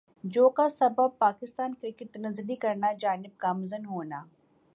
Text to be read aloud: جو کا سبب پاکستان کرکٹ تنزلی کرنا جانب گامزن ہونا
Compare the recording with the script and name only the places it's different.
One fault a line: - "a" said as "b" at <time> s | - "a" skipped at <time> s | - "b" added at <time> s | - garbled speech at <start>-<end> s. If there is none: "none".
none